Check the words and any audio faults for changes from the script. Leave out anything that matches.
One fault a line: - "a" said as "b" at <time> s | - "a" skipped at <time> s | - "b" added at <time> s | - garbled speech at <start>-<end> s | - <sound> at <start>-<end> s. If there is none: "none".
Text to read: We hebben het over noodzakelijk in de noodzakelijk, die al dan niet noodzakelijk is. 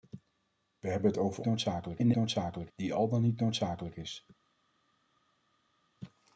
none